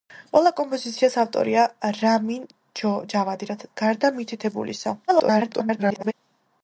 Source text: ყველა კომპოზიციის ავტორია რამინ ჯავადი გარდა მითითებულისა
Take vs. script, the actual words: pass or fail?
fail